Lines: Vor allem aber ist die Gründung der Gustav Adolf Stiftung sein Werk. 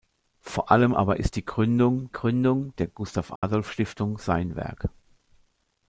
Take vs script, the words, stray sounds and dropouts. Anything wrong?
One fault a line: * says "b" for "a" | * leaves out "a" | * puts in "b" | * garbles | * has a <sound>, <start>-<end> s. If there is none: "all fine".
* puts in "Gründung"
* has a dropout, 3.4-3.4 s